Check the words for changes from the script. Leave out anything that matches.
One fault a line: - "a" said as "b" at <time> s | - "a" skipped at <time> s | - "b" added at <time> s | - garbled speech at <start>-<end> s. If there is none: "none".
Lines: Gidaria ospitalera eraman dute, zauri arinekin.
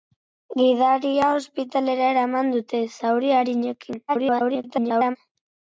- garbled speech at 4.1-5.2 s